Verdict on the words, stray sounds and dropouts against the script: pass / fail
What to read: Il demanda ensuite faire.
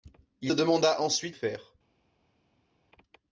pass